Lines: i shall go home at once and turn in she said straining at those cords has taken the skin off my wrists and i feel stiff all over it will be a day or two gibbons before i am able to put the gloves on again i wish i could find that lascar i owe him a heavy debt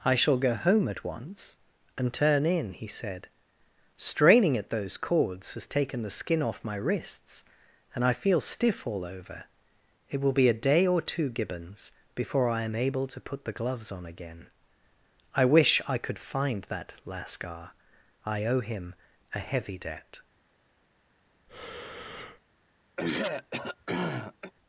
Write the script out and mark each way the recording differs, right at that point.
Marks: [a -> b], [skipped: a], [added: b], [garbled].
i shall go home at once and turn in [she -> he] said straining at those cords has taken the skin off my wrists and i feel stiff all over it will be a day or two gibbons before i am able to put the gloves on again i wish i could find that lascar i owe him a heavy debt